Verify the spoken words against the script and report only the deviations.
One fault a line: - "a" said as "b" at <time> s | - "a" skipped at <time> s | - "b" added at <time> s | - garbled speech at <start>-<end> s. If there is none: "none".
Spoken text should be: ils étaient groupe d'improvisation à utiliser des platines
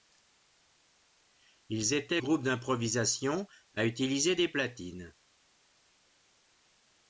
none